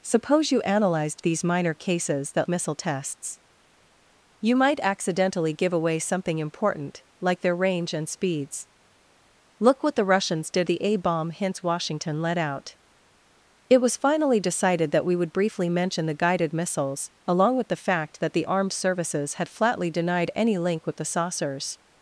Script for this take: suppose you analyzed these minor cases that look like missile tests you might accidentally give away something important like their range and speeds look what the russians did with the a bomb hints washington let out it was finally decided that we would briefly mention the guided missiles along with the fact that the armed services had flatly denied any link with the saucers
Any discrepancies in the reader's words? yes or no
yes